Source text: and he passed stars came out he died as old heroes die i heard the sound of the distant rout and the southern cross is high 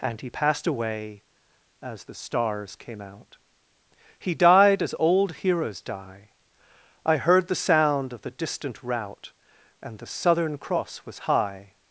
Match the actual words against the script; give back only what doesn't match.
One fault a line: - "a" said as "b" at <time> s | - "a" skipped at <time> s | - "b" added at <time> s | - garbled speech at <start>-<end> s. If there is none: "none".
- "away as the" added at 0.7 s
- "is" said as "was" at 11.0 s